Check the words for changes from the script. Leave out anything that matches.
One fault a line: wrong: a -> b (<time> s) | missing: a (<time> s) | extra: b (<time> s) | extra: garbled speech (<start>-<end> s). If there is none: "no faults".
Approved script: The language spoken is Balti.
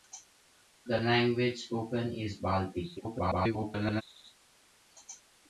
extra: garbled speech (3.0-4.0 s)